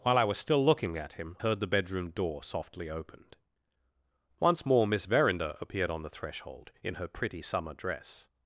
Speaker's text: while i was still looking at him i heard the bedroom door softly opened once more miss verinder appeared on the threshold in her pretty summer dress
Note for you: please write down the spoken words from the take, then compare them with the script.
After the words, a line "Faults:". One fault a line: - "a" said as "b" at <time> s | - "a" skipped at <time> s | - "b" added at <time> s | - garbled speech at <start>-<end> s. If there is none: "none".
while i was still looking at him heard the bedroom door softly opened once more miss verinder appeared on the threshold in her pretty summer dress
Faults:
- "i" skipped at 1.4 s